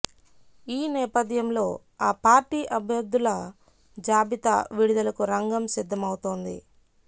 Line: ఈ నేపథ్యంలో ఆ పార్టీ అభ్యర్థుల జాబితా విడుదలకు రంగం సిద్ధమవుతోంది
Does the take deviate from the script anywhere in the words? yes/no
no